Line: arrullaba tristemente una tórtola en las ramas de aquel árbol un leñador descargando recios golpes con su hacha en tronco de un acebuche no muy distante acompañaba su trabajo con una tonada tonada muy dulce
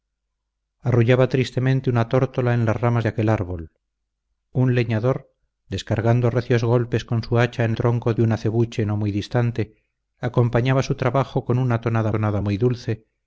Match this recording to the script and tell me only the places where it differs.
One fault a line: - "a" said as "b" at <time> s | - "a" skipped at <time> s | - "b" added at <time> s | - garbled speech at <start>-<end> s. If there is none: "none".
none